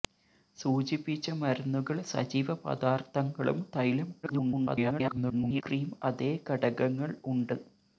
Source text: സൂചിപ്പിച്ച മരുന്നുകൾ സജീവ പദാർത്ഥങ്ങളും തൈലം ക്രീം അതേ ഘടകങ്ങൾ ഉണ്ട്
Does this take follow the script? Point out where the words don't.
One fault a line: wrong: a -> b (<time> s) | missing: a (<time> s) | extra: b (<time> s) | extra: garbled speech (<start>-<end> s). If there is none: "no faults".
extra: garbled speech (4.2-5.6 s)